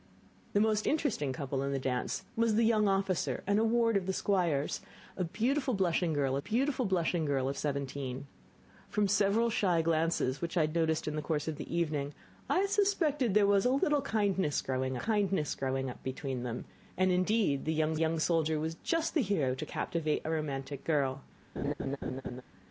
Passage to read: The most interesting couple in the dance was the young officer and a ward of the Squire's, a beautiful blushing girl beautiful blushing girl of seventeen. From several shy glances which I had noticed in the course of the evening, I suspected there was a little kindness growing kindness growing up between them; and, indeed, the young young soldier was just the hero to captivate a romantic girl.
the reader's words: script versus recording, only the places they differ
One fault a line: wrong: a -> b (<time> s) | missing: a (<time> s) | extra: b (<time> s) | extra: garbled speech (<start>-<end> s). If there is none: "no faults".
no faults